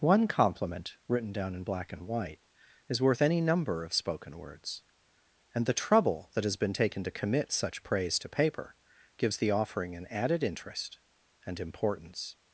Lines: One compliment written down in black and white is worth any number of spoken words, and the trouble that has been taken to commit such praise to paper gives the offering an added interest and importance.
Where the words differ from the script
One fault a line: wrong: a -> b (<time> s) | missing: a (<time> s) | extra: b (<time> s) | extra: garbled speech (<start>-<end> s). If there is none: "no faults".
no faults